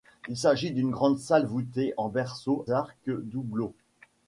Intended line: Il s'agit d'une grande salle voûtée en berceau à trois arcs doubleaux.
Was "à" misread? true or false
true